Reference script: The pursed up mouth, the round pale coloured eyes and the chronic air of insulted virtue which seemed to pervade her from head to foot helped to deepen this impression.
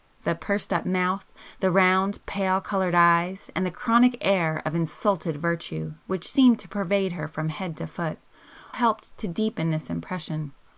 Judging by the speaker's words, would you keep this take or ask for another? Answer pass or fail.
pass